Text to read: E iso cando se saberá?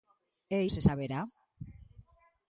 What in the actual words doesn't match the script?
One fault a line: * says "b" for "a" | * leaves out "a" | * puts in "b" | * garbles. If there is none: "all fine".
* leaves out "iso cando"